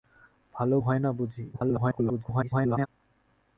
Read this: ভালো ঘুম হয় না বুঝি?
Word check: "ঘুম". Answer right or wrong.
wrong